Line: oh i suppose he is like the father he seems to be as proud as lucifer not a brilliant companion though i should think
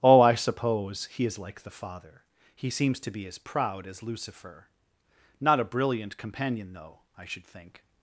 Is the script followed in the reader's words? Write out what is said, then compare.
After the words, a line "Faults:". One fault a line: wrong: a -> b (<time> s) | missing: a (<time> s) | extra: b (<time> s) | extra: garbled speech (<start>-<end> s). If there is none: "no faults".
oh i suppose he is like the father he seems to be as proud as lucifer not a brilliant companion though i should think
Faults:
no faults